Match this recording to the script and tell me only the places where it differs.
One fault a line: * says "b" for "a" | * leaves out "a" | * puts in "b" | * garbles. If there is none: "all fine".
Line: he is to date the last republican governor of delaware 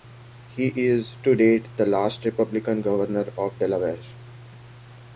all fine